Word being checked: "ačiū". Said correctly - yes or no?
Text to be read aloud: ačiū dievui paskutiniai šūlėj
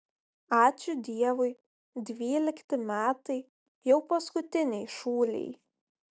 yes